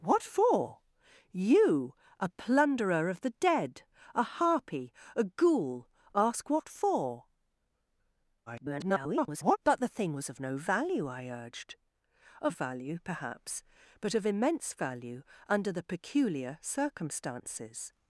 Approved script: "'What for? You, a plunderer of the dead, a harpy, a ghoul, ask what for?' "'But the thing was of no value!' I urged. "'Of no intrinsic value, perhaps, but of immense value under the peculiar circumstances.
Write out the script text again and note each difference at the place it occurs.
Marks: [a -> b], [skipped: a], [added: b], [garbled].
"'What for? You, a plunderer of the dead, a harpy, a ghoul, ask what for?' [garbled] "'But the thing was of no value!' I urged. "'Of [skipped: no intrinsic] value, perhaps, but of immense value under the peculiar circumstances.